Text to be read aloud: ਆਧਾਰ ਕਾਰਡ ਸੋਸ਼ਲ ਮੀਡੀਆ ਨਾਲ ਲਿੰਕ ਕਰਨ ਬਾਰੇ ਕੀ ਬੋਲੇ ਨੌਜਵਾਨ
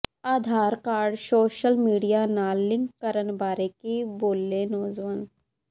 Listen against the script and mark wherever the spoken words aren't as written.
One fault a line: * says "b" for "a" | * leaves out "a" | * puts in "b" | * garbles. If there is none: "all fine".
all fine